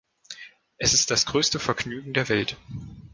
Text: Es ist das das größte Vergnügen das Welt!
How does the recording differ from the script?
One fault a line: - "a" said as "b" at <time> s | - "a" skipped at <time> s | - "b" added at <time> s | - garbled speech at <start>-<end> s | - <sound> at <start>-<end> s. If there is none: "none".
- "das" skipped at 1.3 s
- "das" said as "der" at 2.1 s